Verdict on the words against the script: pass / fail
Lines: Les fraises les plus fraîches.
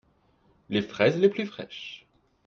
pass